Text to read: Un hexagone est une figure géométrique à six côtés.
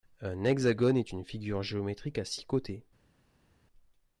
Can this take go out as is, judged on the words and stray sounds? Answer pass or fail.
pass